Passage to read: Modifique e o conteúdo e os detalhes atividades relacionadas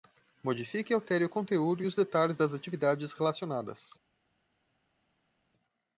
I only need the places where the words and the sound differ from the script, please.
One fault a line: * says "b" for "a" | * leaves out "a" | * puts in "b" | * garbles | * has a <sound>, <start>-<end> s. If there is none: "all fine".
* puts in "altere"
* puts in "das"